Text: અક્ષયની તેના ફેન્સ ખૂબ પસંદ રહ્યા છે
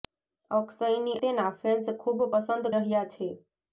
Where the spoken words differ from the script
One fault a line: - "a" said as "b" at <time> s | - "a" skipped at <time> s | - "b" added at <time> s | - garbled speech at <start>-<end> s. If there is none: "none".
none